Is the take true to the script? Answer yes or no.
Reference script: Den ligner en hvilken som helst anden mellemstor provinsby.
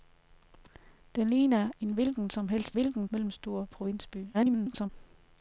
no